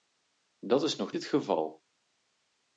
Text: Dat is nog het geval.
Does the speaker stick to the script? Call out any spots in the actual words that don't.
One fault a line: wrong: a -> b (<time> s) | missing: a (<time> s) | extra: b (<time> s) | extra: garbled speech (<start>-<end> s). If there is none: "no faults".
no faults